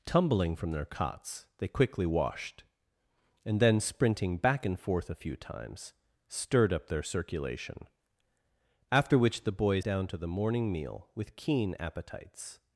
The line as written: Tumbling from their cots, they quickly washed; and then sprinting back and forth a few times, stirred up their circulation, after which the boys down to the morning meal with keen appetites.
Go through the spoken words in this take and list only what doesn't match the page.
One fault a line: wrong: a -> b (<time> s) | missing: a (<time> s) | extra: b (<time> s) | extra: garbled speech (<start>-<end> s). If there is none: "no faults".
no faults